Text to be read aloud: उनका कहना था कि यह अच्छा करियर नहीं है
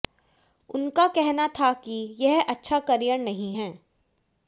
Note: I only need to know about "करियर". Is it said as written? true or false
true